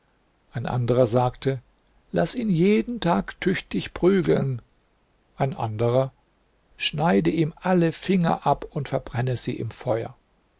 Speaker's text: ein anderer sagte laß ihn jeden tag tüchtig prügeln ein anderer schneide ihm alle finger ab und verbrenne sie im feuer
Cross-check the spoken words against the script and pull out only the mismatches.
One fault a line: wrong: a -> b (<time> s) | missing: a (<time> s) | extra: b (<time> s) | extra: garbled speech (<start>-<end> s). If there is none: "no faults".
no faults